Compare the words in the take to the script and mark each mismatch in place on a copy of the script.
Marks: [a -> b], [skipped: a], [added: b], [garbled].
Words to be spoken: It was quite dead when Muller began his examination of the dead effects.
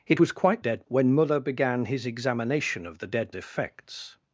It was quite dead when Muller began his examination of the dead effects.